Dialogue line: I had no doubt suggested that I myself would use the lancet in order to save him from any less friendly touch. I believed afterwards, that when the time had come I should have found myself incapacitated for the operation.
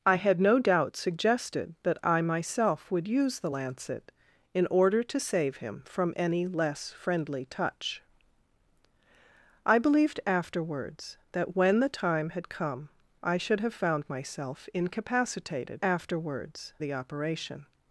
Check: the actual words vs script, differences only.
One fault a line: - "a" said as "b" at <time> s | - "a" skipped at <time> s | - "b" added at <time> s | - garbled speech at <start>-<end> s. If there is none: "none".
- "for" said as "afterwards" at 15.8 s